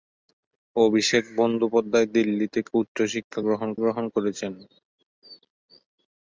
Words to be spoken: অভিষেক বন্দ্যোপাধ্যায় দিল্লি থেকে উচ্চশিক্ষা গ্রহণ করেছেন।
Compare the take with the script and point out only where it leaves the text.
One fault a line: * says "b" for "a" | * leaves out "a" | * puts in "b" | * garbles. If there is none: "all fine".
* puts in "গ্রহণ"